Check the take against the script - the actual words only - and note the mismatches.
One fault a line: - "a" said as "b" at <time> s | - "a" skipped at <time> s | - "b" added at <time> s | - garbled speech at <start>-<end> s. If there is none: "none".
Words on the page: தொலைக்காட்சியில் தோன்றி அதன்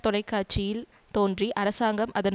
- "அரசாங்கம்" added at 1.5 s